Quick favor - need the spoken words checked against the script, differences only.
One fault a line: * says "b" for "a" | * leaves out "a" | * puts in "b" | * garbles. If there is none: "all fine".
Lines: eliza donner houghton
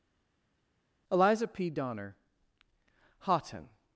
* puts in "p"